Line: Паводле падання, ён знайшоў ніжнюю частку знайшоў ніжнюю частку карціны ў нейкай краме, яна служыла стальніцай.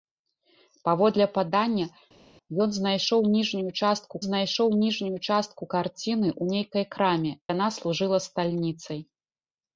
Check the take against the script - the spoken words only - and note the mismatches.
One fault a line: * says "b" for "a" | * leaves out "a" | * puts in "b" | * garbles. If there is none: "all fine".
all fine